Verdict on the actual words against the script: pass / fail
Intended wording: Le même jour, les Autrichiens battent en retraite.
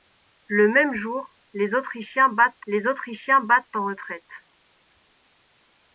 fail